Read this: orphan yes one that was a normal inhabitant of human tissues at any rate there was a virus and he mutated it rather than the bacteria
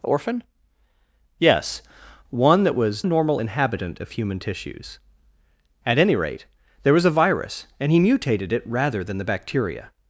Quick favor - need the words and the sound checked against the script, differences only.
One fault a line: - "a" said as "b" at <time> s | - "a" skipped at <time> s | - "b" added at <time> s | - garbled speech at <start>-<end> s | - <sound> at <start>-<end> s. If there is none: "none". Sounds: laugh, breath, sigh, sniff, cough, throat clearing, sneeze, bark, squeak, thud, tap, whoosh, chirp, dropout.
none